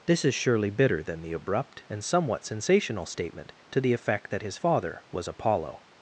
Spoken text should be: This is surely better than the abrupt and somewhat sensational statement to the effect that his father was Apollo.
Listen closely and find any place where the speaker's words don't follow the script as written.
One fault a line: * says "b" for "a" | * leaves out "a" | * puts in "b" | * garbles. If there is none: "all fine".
* says "bitter" for "better"